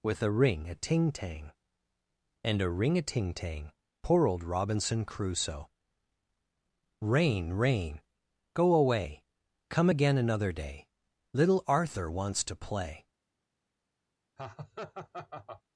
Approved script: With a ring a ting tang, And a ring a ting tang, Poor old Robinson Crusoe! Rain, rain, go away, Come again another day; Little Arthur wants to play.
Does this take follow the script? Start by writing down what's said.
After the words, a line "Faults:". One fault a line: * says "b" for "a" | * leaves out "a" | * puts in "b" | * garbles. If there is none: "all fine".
With a ring a ting tang, And a ring a ting tang, Poor old Robinson Crusoe! Rain, rain, go away, Come again another day; Little Arthur wants to play.
Faults:
all fine